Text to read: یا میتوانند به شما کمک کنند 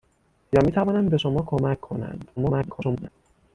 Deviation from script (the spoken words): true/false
true